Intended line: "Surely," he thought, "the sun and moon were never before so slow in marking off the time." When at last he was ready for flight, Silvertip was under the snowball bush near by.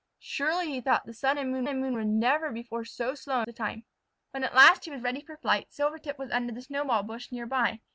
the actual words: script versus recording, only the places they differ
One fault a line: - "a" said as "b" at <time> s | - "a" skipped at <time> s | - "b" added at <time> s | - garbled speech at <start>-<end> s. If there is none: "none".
- "and moon" added at 1.7 s
- "in marking off" skipped at 3.4 s